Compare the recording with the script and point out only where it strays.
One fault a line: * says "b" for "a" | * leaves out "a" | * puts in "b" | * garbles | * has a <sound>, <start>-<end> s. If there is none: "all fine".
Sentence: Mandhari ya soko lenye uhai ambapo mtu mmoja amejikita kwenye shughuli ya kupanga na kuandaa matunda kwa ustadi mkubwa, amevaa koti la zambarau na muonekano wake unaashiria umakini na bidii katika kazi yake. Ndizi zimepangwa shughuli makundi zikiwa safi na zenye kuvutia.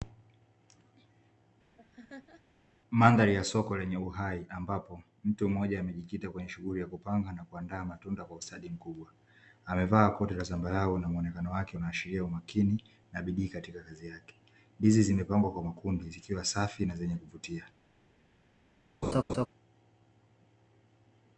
* has a laugh, 1.8-2.4 s
* says "kwa" for "shughuli"
* has a laugh, 19.0-19.5 s